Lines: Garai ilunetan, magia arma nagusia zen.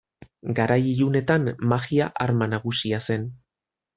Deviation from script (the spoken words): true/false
false